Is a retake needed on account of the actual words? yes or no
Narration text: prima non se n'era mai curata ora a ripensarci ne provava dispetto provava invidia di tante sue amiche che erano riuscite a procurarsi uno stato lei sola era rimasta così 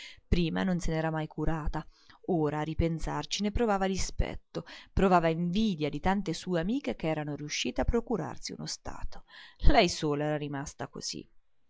no